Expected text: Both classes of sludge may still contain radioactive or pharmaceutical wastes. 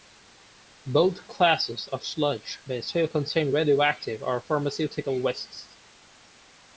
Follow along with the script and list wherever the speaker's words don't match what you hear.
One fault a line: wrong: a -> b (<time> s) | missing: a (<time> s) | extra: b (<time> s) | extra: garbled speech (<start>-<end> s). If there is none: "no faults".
no faults